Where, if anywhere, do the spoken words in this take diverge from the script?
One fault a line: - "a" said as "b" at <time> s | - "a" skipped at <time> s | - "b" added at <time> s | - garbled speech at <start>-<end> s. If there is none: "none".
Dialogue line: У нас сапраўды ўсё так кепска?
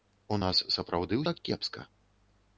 - "ўсё" skipped at 1.2 s